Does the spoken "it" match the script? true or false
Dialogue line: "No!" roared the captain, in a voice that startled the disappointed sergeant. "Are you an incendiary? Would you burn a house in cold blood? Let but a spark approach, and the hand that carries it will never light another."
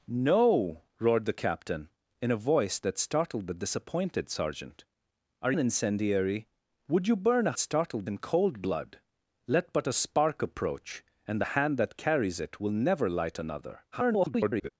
true